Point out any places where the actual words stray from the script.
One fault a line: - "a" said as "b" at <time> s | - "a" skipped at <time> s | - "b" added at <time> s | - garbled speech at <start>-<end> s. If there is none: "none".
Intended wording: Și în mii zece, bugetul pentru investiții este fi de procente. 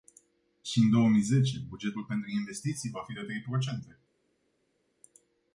- "două" added at 0.9 s
- "este" said as "va" at 2.9 s
- "trei" added at 3.2 s